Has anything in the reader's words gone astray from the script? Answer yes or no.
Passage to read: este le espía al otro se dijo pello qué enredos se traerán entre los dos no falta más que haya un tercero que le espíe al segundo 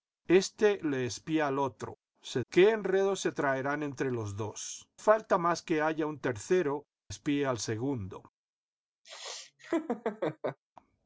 yes